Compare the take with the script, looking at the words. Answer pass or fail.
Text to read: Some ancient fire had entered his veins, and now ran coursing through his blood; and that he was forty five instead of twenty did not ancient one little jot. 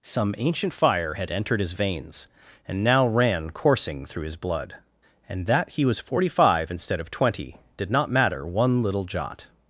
fail